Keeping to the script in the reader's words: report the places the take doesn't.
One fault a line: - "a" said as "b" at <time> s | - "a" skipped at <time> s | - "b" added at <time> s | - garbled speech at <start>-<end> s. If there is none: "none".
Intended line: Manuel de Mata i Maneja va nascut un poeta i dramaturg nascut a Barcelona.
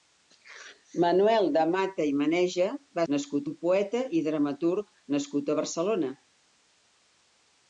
none